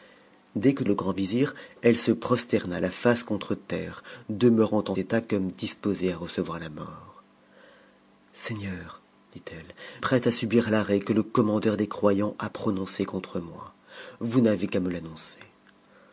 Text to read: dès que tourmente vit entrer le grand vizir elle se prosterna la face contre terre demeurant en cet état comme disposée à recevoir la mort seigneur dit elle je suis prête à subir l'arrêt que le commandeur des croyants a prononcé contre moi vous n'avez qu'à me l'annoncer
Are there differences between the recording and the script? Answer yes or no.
yes